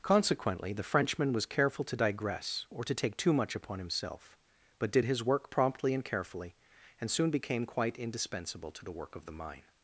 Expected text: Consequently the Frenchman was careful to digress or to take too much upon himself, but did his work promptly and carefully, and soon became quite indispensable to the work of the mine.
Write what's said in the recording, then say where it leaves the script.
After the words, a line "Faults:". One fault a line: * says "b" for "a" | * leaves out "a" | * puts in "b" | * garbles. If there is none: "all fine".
Consequently the Frenchman was careful to digress or to take too much upon himself, but did his work promptly and carefully, and soon became quite indispensable to the work of the mine.
Faults:
all fine